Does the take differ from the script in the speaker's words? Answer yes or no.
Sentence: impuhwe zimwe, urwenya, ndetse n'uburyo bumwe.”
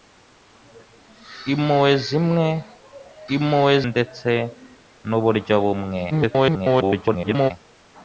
yes